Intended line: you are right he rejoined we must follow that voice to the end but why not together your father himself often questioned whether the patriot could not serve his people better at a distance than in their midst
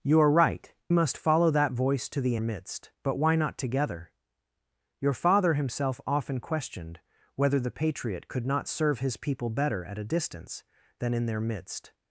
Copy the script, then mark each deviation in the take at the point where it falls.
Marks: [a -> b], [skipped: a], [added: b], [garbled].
you are right [skipped: he rejoined we] must follow that voice to the [end -> midst] but why not together your father himself often questioned whether the patriot could not serve his people better at a distance than in their midst